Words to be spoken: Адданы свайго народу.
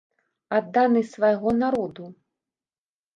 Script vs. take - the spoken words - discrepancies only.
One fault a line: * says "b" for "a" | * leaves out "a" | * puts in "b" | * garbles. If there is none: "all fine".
all fine